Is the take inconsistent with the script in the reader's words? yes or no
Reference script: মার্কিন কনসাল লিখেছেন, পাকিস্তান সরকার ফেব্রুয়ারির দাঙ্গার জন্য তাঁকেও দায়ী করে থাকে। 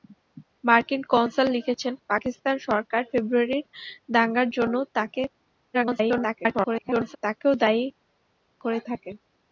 yes